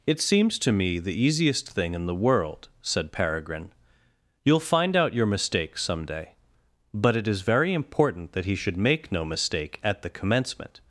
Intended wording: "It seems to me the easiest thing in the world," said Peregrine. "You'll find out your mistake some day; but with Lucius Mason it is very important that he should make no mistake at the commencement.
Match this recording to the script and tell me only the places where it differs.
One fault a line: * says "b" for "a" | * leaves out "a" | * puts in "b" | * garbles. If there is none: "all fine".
* leaves out "with Lucius Mason"